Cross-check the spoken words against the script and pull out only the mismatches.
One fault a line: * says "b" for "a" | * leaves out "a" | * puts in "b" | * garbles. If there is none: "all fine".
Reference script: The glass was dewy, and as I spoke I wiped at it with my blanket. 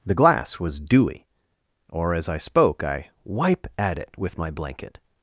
* says "or" for "and"
* says "wipe" for "wiped"